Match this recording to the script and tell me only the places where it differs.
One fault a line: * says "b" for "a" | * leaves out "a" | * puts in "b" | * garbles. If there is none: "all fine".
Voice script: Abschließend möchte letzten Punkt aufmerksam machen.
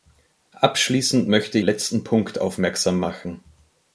all fine